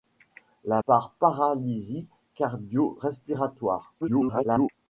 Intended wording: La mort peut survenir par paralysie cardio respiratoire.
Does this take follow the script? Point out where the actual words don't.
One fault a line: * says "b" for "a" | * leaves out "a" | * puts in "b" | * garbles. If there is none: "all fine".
* leaves out "mort peut survenir"
* garbles